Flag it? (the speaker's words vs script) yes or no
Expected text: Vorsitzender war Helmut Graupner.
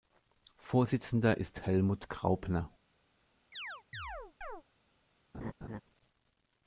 yes